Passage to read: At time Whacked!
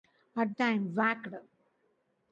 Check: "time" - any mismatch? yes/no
no